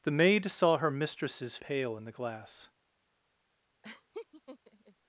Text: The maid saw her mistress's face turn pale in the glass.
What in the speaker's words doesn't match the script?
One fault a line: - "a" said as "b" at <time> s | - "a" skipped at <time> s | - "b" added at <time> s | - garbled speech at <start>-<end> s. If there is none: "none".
- "face turn" skipped at 1.6 s